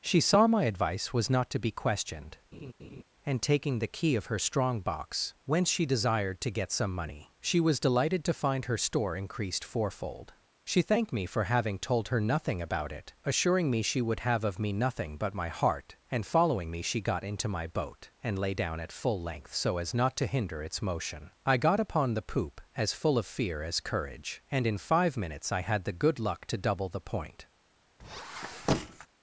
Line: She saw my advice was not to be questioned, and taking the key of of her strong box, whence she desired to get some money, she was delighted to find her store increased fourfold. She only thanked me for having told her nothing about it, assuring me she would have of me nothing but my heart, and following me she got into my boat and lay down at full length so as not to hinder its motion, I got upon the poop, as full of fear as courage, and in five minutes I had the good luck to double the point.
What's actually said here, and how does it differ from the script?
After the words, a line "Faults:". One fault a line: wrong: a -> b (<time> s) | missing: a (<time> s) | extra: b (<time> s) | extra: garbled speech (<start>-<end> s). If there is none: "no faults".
She saw my advice was not to be questioned, and taking the key of her strong box, whence she desired to get some money, she was delighted to find her store increased fourfold. She thanked me for having told her nothing about it, assuring me she would have of me nothing but my heart, and following me she got into my boat and lay down at full length so as not to hinder its motion, I got upon the poop, as full of fear as courage, and in five minutes I had the good luck to double the point.
Faults:
missing: of (4.3 s)
missing: only (10.8 s)